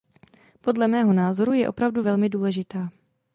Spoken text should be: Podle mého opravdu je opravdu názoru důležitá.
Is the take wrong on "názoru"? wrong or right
wrong